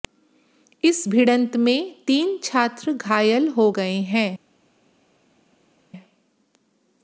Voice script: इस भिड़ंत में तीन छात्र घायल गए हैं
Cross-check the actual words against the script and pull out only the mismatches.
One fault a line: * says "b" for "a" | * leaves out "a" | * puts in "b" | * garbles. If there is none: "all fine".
* puts in "हो"